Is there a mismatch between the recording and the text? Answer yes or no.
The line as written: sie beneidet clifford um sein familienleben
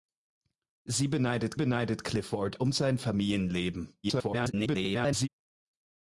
yes